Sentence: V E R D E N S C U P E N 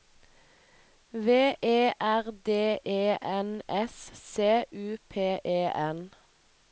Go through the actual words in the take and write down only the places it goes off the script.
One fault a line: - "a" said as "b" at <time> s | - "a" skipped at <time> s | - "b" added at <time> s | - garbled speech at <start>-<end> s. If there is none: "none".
none